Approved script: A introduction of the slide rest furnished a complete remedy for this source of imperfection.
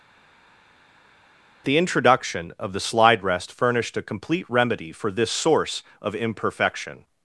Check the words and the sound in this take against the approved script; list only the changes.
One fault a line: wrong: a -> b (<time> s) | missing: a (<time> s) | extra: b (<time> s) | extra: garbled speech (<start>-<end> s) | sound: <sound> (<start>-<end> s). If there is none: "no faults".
wrong: A -> The (1.7 s)